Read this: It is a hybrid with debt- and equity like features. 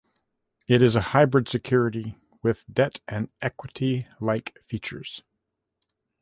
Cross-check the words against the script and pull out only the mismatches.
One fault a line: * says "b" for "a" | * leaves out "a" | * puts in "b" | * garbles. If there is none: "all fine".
* puts in "security"